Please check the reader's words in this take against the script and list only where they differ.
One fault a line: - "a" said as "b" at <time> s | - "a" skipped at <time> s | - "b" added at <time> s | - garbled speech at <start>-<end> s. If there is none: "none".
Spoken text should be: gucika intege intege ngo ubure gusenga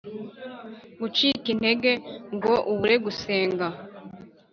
- "intege" skipped at 1.9 s